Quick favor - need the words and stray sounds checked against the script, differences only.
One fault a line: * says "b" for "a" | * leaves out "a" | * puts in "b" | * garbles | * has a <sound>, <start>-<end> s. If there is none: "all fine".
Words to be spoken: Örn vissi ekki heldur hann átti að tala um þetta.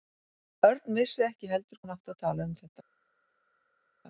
all fine